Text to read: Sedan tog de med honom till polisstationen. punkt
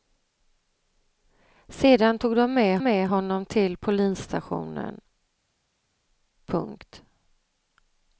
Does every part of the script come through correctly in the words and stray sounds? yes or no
no